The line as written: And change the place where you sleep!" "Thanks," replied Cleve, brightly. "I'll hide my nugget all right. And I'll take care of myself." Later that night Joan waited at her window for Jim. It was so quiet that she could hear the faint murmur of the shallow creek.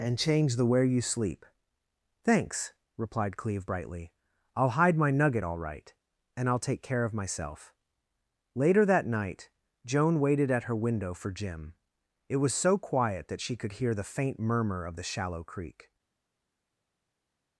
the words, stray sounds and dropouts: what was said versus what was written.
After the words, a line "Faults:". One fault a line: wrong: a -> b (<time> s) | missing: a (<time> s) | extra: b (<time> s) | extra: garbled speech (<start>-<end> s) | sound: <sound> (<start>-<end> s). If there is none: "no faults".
And change the where you sleep!" "Thanks," replied Cleve, brightly. "I'll hide my nugget all right. And I'll take care of myself." Later that night Joan waited at her window for Jim. It was so quiet that she could hear the faint murmur of the shallow creek.
Faults:
missing: place (0.7 s)